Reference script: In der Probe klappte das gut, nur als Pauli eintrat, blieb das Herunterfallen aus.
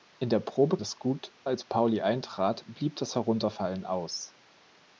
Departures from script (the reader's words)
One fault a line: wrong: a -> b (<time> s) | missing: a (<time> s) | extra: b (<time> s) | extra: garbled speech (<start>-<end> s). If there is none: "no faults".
missing: klappte (0.8 s)
missing: nur (1.3 s)